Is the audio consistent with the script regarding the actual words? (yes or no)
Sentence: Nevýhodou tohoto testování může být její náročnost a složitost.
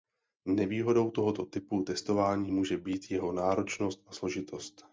no